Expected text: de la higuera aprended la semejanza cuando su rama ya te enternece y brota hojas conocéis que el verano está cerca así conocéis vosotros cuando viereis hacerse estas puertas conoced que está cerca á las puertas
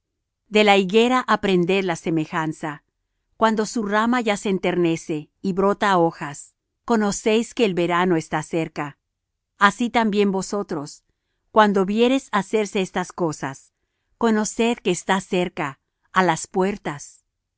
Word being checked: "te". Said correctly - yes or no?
no